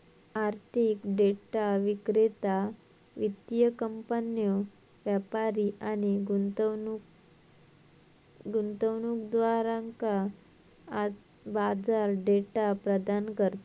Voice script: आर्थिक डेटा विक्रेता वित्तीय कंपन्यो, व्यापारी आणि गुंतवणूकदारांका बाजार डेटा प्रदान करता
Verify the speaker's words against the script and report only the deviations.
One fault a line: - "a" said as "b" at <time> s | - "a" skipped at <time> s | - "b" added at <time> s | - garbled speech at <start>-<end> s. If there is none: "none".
none